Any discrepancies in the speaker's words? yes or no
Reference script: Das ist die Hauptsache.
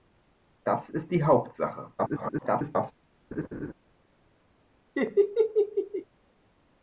yes